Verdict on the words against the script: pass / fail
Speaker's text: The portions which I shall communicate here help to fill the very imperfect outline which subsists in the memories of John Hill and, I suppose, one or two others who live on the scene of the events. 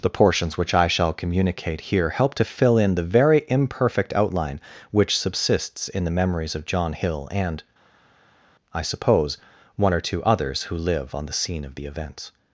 fail